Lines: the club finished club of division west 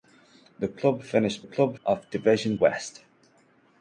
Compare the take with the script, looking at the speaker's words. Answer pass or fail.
pass